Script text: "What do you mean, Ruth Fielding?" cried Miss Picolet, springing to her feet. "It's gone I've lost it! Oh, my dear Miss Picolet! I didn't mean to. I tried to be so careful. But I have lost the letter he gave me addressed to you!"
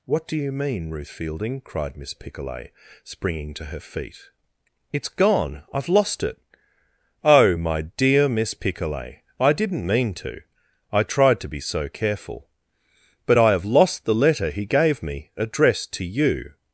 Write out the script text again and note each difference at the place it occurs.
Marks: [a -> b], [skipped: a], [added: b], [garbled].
"What do you mean, Ruth Fielding?" cried Miss Picolet, springing to her feet. "It's gone I've lost it! Oh, my dear Miss Picolet! I didn't mean to. I tried to be so careful. But I have lost the letter he gave me addressed to you!"